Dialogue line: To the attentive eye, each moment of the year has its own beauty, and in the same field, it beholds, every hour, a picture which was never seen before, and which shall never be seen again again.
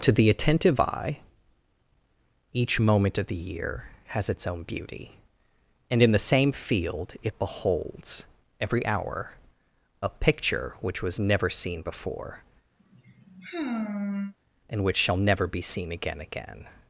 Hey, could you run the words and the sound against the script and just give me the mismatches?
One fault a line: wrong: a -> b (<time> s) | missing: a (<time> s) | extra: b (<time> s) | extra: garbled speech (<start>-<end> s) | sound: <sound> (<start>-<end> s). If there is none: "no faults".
sound: sigh (12.8-14.3 s)